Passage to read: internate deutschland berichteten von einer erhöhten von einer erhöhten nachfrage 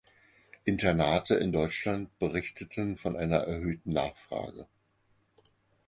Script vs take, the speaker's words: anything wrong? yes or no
yes